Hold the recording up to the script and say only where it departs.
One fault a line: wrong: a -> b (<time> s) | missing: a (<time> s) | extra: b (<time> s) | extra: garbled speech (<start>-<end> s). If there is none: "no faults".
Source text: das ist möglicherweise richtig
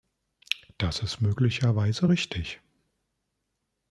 no faults